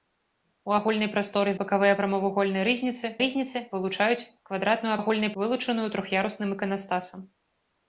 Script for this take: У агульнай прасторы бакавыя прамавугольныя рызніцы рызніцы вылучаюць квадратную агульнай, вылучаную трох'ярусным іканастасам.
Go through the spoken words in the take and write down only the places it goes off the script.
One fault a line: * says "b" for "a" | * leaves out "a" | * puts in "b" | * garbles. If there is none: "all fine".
all fine